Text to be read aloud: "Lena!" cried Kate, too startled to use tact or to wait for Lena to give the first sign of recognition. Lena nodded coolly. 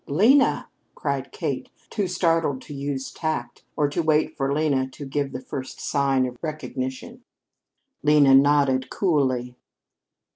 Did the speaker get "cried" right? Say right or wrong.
right